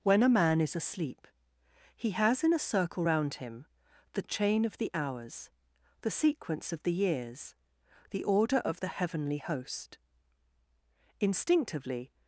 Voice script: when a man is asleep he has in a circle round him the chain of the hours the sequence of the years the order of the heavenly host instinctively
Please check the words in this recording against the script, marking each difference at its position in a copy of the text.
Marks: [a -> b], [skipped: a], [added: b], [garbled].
when a man is asleep he has in a circle round him the chain of the hours the sequence of the years the order of the heavenly host instinctively